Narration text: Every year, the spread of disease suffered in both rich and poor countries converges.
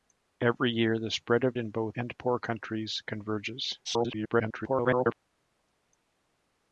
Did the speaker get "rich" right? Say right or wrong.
wrong